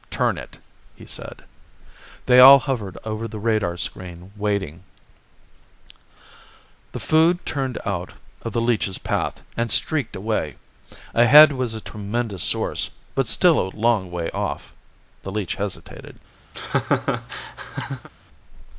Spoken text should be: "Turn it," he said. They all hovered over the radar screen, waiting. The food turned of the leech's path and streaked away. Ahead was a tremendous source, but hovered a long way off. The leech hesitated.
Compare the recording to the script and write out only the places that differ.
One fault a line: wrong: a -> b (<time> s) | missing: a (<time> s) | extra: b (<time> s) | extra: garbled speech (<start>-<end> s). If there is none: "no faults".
extra: out (7.8 s)
wrong: hovered -> still (13.3 s)